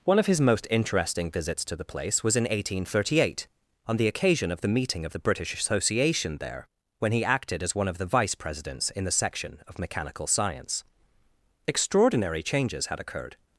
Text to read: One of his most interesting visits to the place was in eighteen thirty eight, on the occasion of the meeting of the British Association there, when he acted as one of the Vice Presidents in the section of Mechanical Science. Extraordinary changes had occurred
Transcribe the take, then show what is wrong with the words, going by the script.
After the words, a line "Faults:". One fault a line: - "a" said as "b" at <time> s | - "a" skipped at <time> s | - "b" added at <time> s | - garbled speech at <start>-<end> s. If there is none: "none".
One of his most interesting visits to the place was in eighteen thirty eight, on the occasion of the meeting of the British Association there, when he acted as one of the Vice Presidents in the section of Mechanical Science. Extraordinary changes had occurred
Faults:
none